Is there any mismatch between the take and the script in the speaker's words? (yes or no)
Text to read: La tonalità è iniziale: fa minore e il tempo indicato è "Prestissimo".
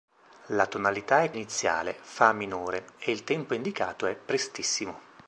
no